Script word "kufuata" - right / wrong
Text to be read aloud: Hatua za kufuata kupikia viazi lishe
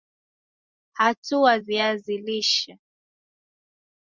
wrong